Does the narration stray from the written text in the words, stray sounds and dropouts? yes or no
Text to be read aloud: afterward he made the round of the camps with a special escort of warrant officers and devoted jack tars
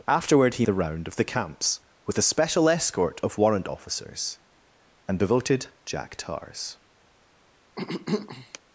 yes